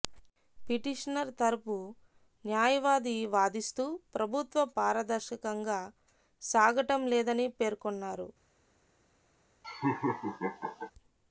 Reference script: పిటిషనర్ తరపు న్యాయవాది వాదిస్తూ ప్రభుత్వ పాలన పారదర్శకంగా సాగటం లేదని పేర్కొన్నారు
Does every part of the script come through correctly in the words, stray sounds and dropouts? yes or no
no